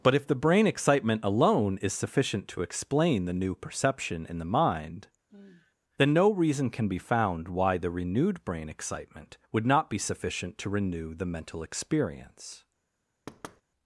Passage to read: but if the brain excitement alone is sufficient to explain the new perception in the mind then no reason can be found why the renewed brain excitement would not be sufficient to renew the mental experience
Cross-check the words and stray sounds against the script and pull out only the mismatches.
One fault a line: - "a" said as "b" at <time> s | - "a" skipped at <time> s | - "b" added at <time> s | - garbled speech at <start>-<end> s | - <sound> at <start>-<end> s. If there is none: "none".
- sigh at 5.3-5.8 s
- thud at 13.3-13.6 s